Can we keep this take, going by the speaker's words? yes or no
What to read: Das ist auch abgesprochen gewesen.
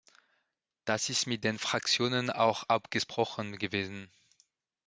no